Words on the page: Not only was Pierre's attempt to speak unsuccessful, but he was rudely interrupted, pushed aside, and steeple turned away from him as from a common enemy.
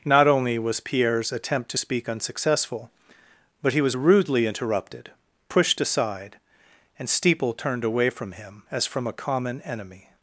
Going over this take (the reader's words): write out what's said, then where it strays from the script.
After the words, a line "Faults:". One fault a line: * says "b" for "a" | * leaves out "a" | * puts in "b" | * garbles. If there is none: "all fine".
Not only was Pierre's attempt to speak unsuccessful, but he was rudely interrupted, pushed aside, and steeple turned away from him as from a common enemy.
Faults:
all fine